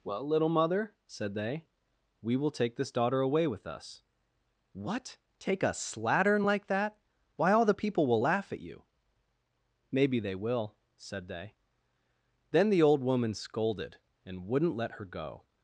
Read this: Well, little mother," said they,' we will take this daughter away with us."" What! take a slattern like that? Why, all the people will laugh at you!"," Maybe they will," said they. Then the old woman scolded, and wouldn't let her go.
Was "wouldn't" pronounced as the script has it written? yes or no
yes